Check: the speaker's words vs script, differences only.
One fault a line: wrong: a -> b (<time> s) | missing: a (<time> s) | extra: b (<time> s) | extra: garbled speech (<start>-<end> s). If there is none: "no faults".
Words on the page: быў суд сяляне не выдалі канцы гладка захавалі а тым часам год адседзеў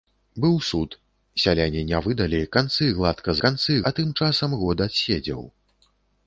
wrong: захавалі -> канцы (3.5 s)